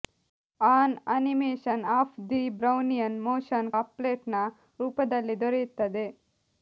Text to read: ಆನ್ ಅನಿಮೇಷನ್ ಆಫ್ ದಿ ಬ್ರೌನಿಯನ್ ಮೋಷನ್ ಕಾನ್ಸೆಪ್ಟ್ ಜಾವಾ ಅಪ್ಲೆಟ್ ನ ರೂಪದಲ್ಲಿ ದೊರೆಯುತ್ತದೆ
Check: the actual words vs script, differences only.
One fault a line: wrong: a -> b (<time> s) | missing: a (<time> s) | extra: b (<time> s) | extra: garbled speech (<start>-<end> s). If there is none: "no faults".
missing: ಕಾನ್ಸೆಪ್ಟ್ ಜಾವಾ (3.7 s)